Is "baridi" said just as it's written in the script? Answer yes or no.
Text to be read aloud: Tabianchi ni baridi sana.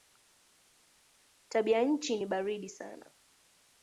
yes